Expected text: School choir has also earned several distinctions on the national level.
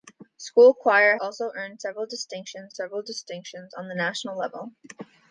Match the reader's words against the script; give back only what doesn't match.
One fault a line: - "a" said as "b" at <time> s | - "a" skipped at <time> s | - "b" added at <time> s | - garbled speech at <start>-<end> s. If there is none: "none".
- "has" skipped at 1.2 s
- "several distinctions" added at 2.7 s